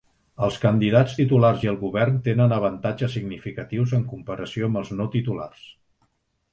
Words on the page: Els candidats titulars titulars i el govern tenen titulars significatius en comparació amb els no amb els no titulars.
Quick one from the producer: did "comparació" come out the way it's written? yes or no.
yes